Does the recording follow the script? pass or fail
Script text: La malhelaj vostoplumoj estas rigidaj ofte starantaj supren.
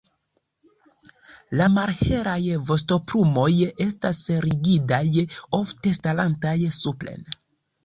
pass